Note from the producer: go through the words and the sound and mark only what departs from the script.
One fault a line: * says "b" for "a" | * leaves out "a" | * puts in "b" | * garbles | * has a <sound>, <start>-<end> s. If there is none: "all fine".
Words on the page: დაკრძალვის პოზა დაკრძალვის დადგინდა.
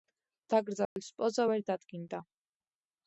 * has a dropout, 0.9-1.0 s
* says "ვერ" for "დაკრძალვის"